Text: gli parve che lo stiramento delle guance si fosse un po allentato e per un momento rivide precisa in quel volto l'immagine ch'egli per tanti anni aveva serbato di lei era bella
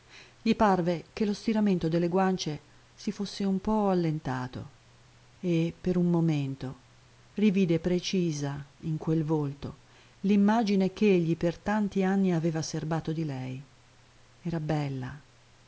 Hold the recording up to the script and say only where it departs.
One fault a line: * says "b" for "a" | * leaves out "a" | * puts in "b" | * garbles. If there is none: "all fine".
all fine